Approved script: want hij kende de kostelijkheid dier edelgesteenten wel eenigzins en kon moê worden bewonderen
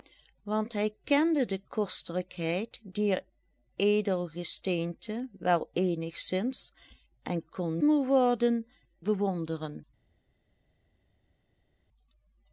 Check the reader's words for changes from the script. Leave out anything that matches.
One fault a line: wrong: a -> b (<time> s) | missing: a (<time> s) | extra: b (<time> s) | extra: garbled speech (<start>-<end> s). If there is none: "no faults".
no faults